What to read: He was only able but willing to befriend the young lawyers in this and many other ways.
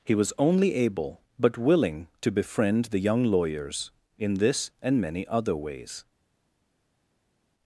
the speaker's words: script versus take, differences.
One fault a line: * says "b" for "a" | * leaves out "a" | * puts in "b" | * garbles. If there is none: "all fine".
all fine